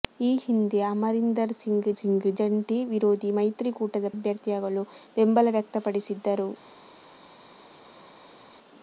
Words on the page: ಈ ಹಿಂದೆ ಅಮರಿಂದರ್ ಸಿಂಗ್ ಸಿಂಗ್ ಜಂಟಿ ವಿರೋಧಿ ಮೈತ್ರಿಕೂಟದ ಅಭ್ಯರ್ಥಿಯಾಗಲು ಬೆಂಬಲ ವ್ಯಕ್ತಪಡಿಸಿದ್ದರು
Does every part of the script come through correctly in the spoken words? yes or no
yes